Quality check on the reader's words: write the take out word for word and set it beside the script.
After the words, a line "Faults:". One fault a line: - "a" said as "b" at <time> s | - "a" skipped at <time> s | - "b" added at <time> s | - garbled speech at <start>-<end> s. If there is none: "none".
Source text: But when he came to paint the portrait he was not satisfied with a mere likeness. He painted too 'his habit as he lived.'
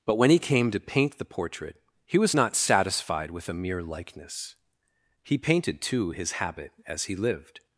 But when he came to paint the portrait he was not satisfied with a mere likeness. He painted too 'his habit as he lived.'
Faults:
none